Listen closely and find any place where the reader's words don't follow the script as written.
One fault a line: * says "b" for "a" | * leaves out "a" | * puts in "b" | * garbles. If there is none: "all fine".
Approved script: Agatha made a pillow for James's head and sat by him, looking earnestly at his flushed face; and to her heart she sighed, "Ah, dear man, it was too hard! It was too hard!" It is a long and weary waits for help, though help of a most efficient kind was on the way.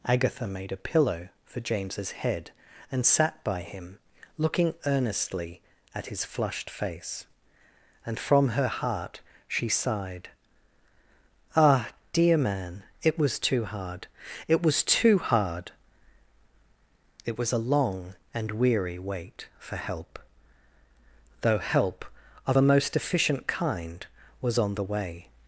* says "from" for "to"
* says "was" for "is"
* says "wait" for "waits"